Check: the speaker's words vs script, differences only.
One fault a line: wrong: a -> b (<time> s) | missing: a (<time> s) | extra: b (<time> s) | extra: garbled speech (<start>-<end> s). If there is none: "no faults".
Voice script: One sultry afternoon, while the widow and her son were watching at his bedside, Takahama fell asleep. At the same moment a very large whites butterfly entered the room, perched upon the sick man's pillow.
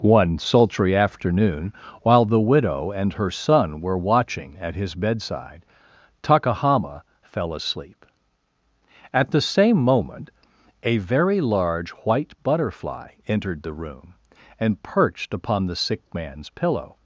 wrong: whites -> white (11.9 s)
extra: and (14.6 s)